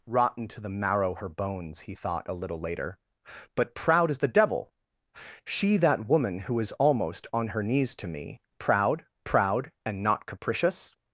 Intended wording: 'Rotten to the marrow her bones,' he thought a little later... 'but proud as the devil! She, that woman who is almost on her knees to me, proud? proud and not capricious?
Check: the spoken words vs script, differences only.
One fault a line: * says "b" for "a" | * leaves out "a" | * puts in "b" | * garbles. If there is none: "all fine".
all fine